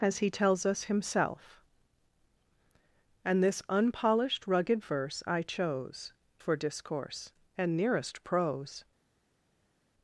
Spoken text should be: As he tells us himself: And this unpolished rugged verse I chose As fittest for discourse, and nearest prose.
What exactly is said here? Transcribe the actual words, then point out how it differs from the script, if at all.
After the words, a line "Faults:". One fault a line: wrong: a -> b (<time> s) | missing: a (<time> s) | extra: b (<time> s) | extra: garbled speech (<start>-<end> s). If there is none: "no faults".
As he tells us himself: And this unpolished rugged verse I chose For discourse, and nearest prose.
Faults:
missing: As fittest (6.1 s)